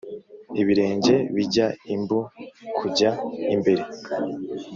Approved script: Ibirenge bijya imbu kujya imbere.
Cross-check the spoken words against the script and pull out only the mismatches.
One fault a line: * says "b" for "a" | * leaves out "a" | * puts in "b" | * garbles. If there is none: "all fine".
all fine